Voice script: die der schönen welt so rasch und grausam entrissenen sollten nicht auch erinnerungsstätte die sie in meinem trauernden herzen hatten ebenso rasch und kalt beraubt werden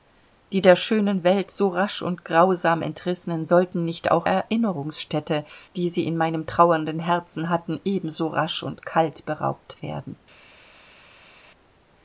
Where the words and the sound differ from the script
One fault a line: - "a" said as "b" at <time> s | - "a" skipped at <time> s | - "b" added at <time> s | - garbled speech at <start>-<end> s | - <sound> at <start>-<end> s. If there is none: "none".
none